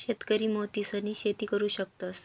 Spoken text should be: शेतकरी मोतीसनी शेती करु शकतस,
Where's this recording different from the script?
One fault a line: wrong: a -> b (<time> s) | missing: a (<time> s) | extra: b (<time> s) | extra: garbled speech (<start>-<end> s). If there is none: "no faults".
no faults